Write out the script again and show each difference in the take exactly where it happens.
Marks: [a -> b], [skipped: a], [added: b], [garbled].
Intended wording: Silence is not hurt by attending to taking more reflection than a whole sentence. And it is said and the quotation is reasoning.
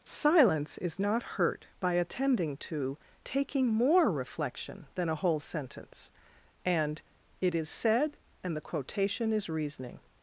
Silence is not hurt by attending to taking more reflection than a whole sentence. And it is said and the quotation is reasoning.